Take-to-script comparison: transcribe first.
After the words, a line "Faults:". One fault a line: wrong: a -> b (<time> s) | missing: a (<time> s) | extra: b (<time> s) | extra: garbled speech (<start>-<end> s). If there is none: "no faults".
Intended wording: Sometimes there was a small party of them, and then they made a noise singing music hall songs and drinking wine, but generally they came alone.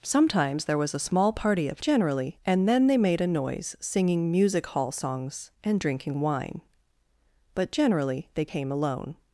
Sometimes there was a small party of generally, and then they made a noise singing music hall songs and drinking wine, but generally they came alone.
Faults:
wrong: them -> generally (1.8 s)